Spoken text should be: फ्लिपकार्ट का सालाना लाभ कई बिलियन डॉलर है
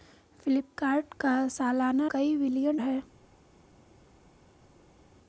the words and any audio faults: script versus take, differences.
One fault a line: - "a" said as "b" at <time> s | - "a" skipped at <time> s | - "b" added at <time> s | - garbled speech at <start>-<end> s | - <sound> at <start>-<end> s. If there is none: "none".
- "लाभ" skipped at 2.1 s
- "डॉलर" skipped at 2.8 s